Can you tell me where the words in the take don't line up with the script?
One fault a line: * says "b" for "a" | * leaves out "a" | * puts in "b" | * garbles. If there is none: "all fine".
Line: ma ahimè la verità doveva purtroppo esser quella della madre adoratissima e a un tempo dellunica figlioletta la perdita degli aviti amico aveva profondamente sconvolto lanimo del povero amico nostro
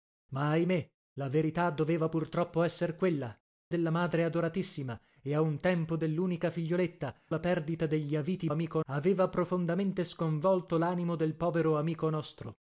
all fine